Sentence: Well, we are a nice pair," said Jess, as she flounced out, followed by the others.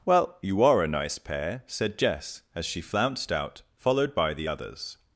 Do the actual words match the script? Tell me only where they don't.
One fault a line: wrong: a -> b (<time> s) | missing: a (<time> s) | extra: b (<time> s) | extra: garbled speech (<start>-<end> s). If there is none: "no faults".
wrong: we -> you (0.4 s)